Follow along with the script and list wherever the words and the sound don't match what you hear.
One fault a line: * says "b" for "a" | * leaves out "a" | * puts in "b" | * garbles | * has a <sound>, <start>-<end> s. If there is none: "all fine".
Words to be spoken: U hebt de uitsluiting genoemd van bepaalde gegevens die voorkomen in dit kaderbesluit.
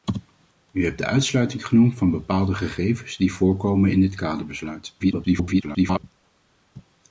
* garbles